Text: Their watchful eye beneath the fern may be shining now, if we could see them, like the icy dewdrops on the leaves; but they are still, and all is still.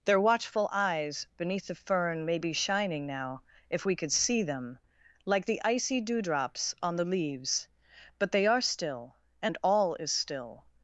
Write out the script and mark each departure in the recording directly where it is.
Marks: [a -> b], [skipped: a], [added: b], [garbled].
Their watchful [eye -> eyes] beneath the fern may be shining now, if we could see them, like the icy dewdrops on the leaves; but they are still, and all is still.